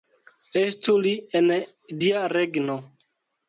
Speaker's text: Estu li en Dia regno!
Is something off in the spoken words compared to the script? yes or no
no